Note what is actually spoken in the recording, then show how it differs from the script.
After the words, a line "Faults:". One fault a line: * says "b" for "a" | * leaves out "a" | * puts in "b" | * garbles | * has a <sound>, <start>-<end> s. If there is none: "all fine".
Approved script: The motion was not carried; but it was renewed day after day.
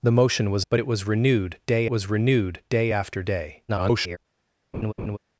The motion was; but it was renewed day was renewed day after day. [garbled]
Faults:
* says "but it was renewed day" for "not carried but it"
* garbles
* has a laugh, 4.7-5.2 s